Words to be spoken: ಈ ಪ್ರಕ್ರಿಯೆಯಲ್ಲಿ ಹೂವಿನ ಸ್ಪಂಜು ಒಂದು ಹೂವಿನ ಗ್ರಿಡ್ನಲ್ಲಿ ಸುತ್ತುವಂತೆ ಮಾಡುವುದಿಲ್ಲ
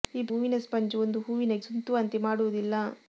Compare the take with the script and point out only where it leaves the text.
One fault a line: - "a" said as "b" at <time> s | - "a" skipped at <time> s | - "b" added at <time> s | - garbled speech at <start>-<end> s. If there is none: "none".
- "ಪ್ರಕ್ರಿಯೆಯಲ್ಲಿ" skipped at 0.3 s
- "ಗ್ರಿಡ್ನಲ್ಲಿ" skipped at 1.6 s